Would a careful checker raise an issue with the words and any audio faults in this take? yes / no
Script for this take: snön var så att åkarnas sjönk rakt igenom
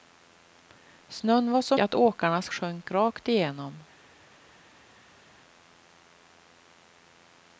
no